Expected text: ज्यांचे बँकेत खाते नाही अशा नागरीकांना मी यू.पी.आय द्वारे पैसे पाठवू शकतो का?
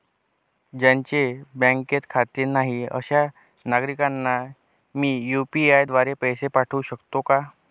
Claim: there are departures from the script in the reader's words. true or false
false